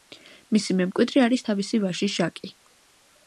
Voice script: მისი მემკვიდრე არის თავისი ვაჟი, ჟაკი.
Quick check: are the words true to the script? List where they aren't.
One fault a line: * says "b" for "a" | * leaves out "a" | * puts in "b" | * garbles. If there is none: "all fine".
all fine